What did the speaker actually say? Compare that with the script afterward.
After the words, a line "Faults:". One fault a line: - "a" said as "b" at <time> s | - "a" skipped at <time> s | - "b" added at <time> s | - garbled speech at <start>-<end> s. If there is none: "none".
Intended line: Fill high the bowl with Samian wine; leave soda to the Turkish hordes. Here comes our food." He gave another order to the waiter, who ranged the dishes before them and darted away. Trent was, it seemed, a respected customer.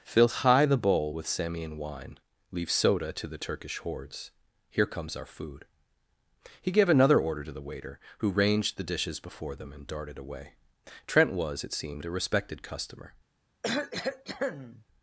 Fill high the bowl with Samian wine; leave soda to the Turkish hordes. Here comes our food." He gave another order to the waiter, who ranged the dishes before them and darted away. Trent was, it seemed, a respected customer.
Faults:
none